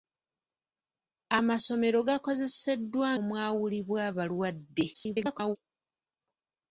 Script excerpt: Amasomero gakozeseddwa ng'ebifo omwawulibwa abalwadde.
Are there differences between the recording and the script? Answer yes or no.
yes